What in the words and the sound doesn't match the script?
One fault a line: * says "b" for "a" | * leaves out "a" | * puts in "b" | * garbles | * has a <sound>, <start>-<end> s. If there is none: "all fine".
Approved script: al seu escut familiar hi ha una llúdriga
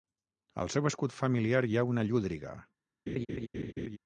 * has a laugh, 3.1-4.0 s